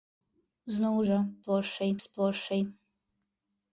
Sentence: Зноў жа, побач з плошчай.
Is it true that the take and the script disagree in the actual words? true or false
true